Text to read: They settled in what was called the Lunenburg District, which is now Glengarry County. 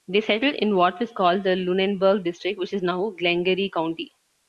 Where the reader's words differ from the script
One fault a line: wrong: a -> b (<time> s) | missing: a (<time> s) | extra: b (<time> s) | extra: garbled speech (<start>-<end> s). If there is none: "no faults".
no faults